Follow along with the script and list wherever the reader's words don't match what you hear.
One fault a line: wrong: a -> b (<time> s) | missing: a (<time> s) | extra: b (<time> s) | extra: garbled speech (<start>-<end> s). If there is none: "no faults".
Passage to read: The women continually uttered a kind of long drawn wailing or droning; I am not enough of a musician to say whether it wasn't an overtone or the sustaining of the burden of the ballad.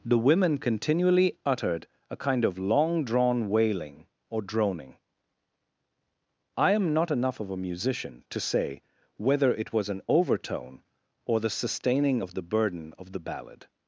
wrong: wasn't -> was (9.7 s)